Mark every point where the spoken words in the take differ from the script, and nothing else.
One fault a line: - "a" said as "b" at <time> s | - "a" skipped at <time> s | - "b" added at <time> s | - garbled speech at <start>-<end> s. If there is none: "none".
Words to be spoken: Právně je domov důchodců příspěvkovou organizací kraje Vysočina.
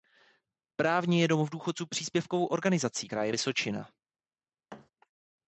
none